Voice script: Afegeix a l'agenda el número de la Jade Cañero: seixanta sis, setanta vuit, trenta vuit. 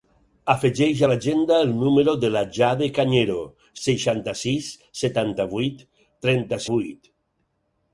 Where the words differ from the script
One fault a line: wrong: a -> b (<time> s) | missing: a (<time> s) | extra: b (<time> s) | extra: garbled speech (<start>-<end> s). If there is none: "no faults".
no faults